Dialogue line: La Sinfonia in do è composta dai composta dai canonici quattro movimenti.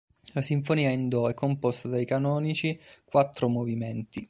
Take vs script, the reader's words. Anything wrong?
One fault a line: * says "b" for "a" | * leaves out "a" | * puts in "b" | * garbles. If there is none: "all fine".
* leaves out "composta dai"